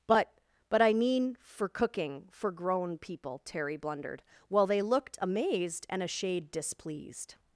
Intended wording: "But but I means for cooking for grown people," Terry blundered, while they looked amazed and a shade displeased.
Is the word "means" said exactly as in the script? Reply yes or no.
no